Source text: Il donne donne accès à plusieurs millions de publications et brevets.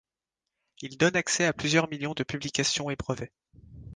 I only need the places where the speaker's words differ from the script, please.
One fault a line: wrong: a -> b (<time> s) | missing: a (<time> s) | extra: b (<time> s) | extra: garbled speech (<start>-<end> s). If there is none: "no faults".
missing: donne (1.1 s)